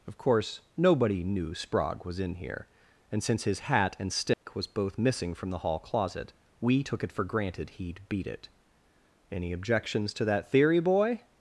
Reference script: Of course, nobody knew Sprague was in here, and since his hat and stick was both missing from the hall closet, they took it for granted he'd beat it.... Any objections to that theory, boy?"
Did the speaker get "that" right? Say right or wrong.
right